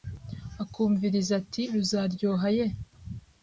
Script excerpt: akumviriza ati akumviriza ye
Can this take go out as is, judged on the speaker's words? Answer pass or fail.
fail